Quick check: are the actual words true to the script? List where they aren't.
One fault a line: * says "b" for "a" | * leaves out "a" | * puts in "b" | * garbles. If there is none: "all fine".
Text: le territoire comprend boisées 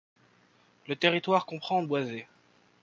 all fine